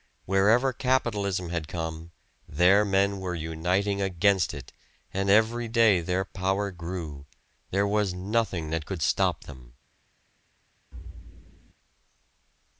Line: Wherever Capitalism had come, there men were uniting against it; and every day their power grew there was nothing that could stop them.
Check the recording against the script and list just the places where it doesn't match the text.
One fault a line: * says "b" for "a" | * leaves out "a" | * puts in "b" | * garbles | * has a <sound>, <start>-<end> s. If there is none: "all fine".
* has a thud, 10.9-11.7 s